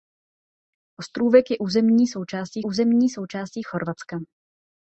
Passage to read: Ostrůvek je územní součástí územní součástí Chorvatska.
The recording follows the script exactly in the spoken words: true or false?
true